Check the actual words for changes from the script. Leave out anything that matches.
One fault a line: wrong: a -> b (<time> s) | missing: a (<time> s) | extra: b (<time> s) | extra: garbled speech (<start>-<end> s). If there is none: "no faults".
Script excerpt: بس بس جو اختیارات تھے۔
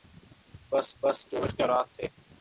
no faults